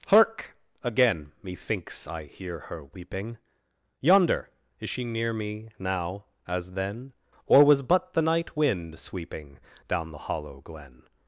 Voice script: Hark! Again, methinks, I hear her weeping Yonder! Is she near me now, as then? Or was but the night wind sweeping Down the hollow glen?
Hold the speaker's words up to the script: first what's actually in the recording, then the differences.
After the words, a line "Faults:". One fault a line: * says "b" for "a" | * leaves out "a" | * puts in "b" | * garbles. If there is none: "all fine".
Hark! Again, methinks, I hear her weeping Yonder! Is she near me now, as then? Or was but the night wind sweeping Down the hollow glen?
Faults:
all fine